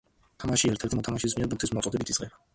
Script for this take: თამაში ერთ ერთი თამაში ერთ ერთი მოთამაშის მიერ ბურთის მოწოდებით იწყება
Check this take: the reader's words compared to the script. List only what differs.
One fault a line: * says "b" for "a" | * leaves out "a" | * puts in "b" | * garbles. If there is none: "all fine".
* leaves out "თამაში ერთ ერთი"